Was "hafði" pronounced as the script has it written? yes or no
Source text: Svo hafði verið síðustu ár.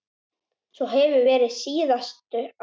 no